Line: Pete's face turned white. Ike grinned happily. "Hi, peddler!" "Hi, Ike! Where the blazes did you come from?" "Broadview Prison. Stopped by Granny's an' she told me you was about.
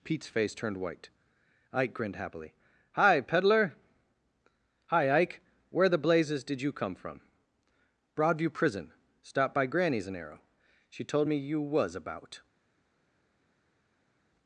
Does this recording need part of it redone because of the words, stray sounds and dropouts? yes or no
yes